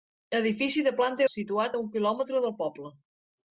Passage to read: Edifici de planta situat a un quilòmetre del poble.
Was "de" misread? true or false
false